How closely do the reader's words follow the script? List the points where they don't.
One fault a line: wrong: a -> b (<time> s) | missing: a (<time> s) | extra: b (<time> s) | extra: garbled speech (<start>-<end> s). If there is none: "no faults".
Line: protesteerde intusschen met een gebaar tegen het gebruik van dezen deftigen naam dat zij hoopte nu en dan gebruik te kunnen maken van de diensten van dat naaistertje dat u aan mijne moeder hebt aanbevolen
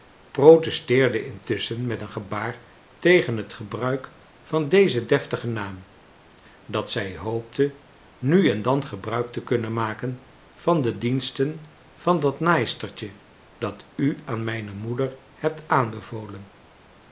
no faults